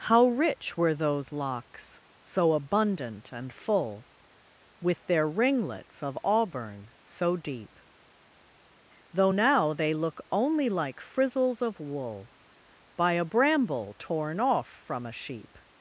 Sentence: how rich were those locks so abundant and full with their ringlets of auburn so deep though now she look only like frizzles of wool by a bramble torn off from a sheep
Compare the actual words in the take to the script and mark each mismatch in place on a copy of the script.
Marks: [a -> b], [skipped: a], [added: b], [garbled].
how rich were those locks so abundant and full with their ringlets of auburn so deep though now [she -> they] look only like frizzles of wool by a bramble torn off from a sheep